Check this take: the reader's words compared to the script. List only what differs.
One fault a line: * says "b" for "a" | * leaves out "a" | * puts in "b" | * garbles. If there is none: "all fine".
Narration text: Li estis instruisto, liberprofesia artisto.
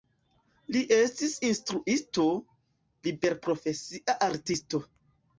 all fine